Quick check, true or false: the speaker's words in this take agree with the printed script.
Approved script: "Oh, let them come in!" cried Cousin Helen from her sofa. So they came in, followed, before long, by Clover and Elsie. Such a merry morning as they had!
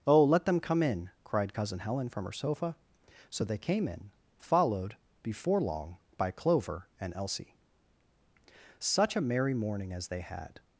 true